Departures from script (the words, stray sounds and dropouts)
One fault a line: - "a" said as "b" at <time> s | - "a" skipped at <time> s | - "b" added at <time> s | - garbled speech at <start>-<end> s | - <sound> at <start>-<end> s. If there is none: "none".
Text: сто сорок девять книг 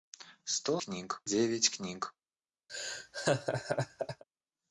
- "сорок" said as "книг" at 0.8 s
- laugh at 2.7-4.2 s